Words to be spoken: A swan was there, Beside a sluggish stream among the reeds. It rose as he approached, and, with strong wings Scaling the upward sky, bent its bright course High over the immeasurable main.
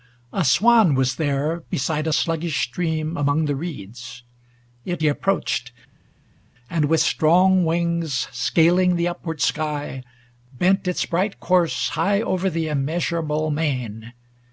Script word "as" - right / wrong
wrong